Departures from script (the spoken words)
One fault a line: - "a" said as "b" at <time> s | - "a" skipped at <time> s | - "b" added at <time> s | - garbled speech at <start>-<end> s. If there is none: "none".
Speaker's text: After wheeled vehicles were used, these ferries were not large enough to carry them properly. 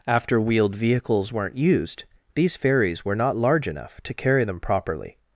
- "were" said as "weren't" at 1.3 s